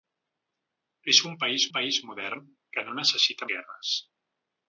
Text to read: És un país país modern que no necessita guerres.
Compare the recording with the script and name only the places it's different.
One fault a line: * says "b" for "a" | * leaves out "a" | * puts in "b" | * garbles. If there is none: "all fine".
all fine